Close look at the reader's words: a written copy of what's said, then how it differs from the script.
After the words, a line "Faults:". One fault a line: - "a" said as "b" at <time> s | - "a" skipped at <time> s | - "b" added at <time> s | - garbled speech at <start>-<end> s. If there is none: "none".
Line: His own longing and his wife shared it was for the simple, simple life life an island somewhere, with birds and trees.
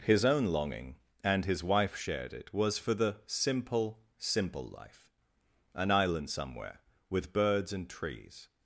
His own longing and his wife shared it was for the simple, simple life an island somewhere, with birds and trees.
Faults:
- "life" skipped at 5.1 s